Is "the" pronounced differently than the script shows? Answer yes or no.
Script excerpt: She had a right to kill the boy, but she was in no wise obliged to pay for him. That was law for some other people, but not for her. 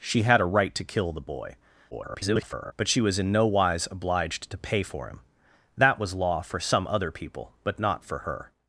no